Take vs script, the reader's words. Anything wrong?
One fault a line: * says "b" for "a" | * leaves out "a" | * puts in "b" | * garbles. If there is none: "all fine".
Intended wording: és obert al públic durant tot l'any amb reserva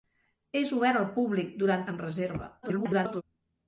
* leaves out "tot l'any"
* garbles